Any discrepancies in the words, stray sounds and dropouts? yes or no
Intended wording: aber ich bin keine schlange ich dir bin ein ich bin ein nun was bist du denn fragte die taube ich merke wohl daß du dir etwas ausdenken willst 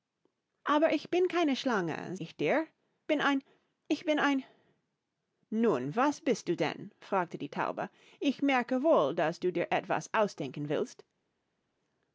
no